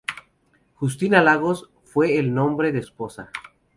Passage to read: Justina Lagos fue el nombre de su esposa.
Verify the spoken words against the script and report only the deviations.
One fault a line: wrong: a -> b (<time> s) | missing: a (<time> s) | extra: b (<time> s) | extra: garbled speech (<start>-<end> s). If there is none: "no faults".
missing: su (2.8 s)